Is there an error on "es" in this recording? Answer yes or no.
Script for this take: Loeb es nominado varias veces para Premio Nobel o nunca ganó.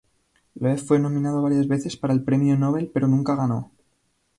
yes